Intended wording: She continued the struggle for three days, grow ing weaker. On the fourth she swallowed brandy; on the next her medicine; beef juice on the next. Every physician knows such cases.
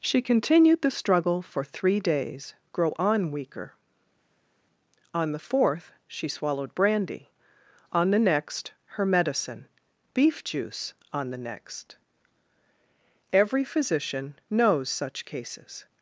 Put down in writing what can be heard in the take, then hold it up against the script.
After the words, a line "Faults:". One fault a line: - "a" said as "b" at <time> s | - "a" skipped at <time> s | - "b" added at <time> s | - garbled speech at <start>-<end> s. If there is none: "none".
She continued the struggle for three days, grow on weaker. On the fourth she swallowed brandy; on the next her medicine; beef juice on the next. Every physician knows such cases.
Faults:
- "ing" said as "on" at 3.0 s